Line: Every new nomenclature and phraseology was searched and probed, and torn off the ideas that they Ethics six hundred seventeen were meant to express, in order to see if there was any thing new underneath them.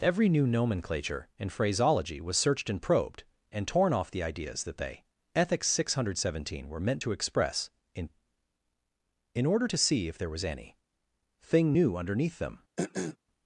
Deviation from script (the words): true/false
true